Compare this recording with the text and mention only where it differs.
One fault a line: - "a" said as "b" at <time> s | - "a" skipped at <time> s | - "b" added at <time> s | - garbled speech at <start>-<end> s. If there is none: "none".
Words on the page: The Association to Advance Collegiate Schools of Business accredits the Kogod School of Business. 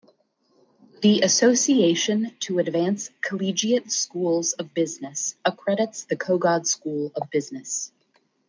none